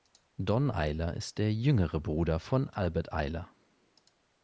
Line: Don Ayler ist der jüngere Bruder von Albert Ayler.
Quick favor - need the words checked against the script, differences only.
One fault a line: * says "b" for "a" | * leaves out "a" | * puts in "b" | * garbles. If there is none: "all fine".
all fine